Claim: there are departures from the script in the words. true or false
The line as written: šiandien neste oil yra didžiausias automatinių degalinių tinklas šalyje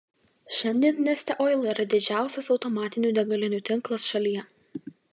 false